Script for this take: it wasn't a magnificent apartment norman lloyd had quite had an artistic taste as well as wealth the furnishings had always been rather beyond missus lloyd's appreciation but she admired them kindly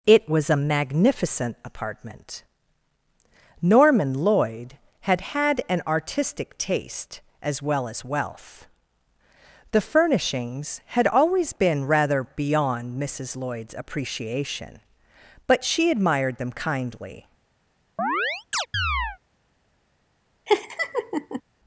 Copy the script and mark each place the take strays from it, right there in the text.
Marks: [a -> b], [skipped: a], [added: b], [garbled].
it [wasn't -> was] a magnificent apartment norman lloyd had [skipped: quite] had an artistic taste as well as wealth the furnishings had always been rather beyond missus lloyd's appreciation but she admired them kindly